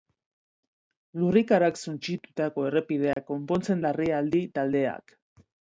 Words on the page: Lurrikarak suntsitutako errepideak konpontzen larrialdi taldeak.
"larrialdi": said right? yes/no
yes